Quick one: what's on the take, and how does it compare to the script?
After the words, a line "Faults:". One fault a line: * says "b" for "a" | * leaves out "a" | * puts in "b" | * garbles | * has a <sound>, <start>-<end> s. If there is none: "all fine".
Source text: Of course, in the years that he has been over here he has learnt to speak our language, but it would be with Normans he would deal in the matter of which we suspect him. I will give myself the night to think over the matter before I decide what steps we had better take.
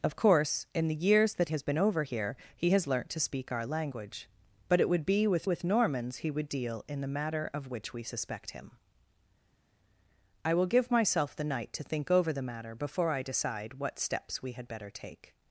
Of course, in the years that has been over here he has learnt to speak our language, but it would be with with Normans he would deal in the matter of which we suspect him. I will give myself the night to think over the matter before I decide what steps we had better take.
Faults:
* leaves out "he"
* puts in "with"